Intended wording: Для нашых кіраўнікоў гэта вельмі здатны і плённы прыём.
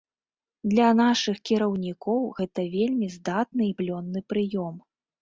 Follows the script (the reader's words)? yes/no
yes